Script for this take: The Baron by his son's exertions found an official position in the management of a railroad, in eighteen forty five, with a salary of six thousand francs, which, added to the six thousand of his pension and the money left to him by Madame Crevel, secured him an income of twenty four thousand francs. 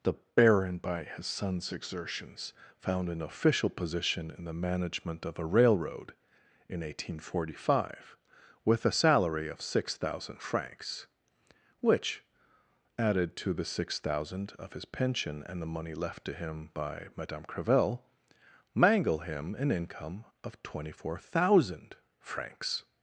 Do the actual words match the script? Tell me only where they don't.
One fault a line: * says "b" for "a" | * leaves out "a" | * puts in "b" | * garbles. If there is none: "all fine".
* says "mangle" for "secured"